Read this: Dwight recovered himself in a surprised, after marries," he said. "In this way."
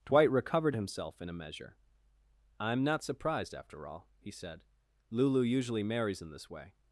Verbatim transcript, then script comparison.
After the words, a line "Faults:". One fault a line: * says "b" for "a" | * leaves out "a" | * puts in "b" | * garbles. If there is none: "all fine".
Dwight recovered himself in a measure. "I'm not surprised, after all," he said. "Lulu usually marries in this way."
Faults:
* puts in "measure I'm not"
* says "all" for "marries"
* puts in "Lulu usually marries"